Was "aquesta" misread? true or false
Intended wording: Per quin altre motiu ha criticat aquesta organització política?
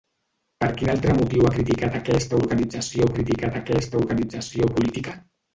false